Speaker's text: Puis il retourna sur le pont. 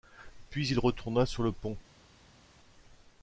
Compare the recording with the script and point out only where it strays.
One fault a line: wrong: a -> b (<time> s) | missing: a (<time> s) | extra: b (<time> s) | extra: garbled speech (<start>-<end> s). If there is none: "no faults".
no faults